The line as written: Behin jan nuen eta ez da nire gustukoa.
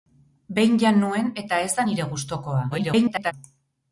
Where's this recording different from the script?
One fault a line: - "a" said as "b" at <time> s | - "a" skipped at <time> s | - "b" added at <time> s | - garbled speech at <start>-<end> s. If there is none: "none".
- garbled speech at 2.7-3.3 s